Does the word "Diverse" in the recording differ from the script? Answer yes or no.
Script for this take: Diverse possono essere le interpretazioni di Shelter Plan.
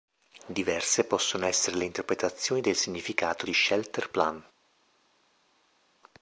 no